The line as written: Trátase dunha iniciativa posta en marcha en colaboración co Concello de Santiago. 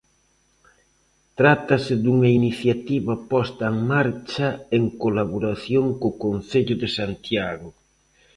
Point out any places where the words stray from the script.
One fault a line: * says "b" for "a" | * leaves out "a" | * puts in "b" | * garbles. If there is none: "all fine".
all fine